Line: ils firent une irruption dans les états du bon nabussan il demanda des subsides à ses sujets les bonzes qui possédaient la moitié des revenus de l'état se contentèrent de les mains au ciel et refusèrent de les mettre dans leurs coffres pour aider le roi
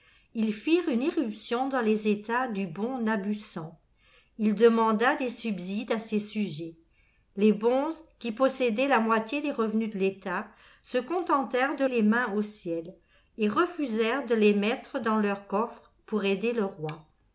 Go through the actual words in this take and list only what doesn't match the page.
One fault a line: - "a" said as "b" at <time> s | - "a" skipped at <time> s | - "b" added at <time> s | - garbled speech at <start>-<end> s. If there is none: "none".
none